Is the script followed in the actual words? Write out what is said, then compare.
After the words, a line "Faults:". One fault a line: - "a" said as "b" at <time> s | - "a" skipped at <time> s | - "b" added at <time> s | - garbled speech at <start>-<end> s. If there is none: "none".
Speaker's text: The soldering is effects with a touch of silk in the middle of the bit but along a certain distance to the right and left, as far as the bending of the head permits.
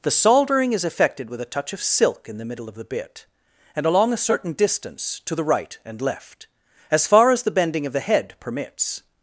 The soldering is effected with a touch of silk in the middle of the bit and along a certain distance to the right and left, as far as the bending of the head permits.
Faults:
- "effects" said as "effected" at 0.8 s
- "but" said as "and" at 3.7 s